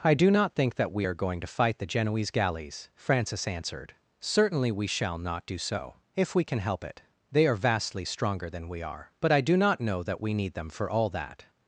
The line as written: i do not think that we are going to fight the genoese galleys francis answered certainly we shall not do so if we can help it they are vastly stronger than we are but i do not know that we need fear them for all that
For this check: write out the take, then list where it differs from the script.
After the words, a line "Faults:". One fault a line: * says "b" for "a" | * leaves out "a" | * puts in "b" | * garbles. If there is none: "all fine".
i do not think that we are going to fight the genoese galleys francis answered certainly we shall not do so if we can help it they are vastly stronger than we are but i do not know that we need them for all that
Faults:
* leaves out "fear"